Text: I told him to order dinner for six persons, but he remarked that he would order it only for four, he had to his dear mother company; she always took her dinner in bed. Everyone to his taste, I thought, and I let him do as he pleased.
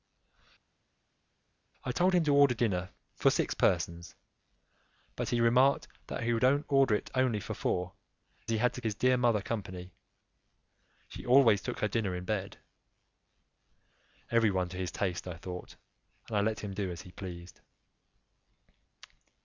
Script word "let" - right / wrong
right